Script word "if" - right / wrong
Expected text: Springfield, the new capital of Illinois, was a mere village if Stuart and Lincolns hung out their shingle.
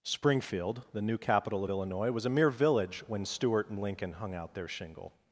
wrong